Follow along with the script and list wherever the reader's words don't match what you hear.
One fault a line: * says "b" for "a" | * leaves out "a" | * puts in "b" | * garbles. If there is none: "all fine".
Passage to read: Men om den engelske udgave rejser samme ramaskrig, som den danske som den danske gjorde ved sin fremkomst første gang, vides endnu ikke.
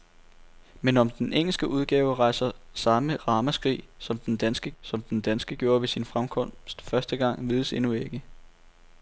all fine